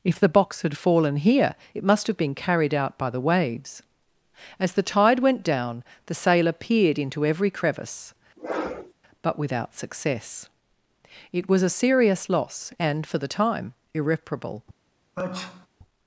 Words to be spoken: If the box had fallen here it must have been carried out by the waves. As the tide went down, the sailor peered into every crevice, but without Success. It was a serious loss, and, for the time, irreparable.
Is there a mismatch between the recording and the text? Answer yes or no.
no